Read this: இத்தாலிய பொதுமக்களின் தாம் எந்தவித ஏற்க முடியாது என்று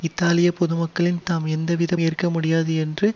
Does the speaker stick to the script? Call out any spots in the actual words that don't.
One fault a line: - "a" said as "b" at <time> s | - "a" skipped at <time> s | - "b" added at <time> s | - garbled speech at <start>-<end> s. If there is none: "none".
none